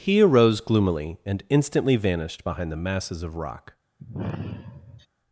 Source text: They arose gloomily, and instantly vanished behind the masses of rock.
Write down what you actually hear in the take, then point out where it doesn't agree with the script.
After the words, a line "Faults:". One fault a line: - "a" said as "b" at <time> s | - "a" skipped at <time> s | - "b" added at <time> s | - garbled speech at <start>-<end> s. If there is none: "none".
He arose gloomily, and instantly vanished behind the masses of rock.
Faults:
- "They" said as "He" at 0.0 s